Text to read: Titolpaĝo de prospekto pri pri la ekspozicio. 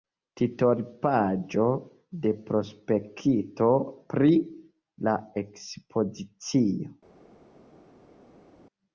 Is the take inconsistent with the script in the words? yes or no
yes